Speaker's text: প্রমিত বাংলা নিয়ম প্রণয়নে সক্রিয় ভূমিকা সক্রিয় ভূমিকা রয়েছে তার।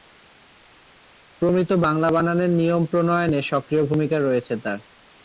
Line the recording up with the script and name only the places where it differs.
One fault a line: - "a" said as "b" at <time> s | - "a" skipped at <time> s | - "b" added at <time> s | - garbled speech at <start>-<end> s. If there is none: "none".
- "বানানের" added at 2.1 s
- "সক্রিয় ভূমিকা" skipped at 4.2 s